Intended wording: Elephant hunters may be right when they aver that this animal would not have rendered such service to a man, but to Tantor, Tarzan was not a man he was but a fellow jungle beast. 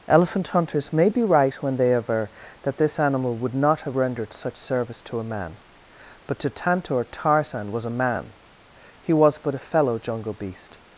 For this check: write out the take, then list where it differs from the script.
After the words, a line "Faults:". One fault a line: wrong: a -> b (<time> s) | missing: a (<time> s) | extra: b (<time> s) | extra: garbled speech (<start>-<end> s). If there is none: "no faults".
Elephant hunters may be right when they aver that this animal would not have rendered such service to a man, but to Tantor, Tarzan was a man he was but a fellow jungle beast.
Faults:
missing: not (7.8 s)